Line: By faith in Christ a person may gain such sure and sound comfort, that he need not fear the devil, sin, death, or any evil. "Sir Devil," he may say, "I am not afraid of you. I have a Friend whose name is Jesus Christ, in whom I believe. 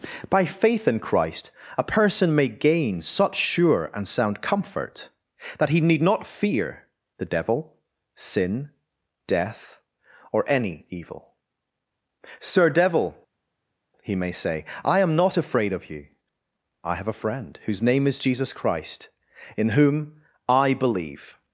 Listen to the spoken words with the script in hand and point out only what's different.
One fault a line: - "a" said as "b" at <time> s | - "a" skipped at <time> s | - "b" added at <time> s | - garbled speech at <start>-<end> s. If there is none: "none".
none